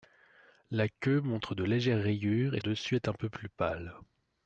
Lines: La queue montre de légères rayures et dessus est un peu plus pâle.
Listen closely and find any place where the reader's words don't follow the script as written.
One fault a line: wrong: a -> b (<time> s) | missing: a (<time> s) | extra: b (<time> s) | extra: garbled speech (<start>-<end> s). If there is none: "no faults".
no faults